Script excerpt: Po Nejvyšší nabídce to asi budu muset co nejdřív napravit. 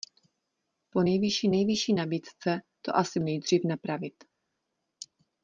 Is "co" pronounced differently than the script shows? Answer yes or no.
yes